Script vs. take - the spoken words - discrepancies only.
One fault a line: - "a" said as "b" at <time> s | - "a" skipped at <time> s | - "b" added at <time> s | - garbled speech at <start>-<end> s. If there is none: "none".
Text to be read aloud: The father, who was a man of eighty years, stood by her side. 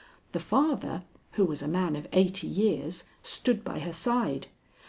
none